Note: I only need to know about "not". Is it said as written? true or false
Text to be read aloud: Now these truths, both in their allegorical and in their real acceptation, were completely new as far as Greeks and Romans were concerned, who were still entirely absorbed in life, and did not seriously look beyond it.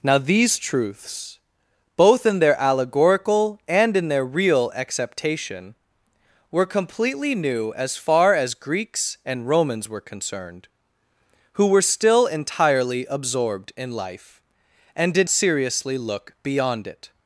false